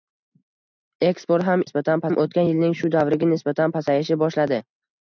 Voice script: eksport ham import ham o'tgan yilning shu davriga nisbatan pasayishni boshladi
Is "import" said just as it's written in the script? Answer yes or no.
no